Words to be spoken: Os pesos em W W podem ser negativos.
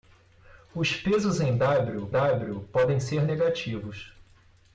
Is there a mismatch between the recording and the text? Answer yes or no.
no